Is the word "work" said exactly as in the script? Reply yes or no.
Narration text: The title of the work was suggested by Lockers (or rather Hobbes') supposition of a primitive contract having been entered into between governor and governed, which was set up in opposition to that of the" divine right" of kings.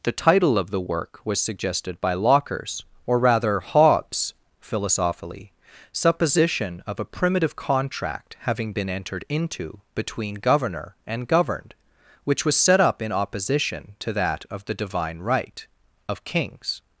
yes